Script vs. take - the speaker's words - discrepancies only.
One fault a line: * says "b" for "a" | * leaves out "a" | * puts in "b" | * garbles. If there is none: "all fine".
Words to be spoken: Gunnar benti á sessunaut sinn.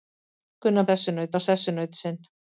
* says "sessunaut" for "benti"